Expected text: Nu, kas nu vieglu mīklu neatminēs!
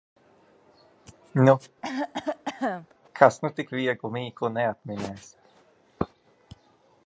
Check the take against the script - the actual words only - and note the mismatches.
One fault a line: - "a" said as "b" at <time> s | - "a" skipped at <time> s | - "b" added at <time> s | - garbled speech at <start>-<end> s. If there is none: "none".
- "tik" added at 3.6 s